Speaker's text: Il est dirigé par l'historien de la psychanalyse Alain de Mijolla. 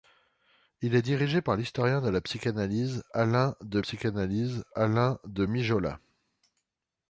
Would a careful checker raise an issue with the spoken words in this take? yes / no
yes